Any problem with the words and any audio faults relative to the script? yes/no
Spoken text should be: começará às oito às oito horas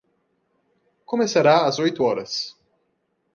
yes